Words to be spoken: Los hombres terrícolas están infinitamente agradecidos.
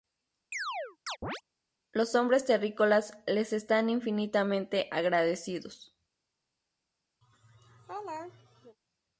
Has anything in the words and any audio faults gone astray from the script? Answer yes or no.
yes